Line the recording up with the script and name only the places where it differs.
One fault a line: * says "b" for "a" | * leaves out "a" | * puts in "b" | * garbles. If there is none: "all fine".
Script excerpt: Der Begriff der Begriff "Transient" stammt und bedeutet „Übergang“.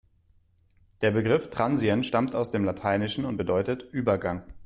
* says "Transient stammt aus dem Lateinischen" for "der Begriff Transient stammt"